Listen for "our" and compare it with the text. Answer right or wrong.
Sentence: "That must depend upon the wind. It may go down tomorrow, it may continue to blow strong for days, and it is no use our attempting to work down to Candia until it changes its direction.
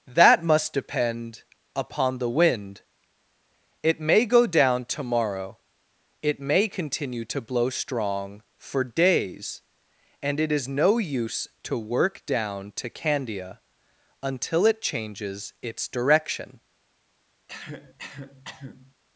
wrong